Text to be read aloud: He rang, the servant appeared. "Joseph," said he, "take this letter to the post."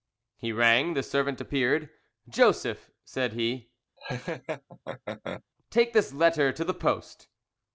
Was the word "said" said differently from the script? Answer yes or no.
no